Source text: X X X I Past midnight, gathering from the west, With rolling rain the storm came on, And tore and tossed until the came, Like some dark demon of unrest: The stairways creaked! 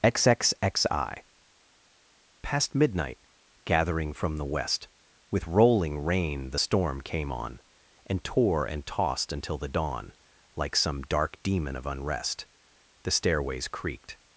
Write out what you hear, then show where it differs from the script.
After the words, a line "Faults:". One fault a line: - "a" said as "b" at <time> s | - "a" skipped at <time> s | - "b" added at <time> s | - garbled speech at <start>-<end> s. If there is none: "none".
X X X I Past midnight, gathering from the west, With rolling rain the storm came on, And tore and tossed until the dawn, Like some dark demon of unrest: The stairways creaked!
Faults:
- "came" said as "dawn" at 9.7 s